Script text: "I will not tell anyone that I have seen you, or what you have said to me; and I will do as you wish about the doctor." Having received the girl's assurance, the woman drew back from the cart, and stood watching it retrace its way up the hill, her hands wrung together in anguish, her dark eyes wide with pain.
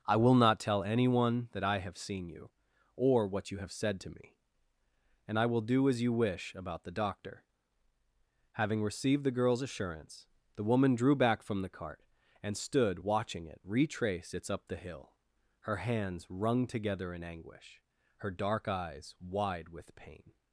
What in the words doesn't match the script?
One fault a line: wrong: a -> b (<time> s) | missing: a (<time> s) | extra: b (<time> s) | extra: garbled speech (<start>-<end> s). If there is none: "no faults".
missing: way (14.5 s)